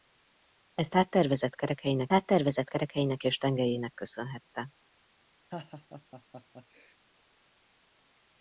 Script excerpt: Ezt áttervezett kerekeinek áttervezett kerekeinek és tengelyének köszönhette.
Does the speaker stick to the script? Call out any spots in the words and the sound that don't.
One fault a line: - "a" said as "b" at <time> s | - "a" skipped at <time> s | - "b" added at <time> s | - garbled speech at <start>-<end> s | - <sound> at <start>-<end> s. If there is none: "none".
- laugh at 5.5-7.0 s